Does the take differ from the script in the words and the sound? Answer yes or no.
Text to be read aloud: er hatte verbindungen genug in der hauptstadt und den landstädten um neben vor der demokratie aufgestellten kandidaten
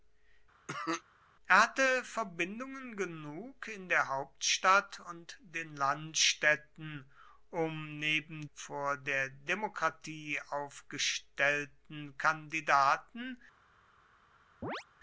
yes